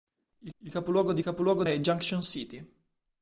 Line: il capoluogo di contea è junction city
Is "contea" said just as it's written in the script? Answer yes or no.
no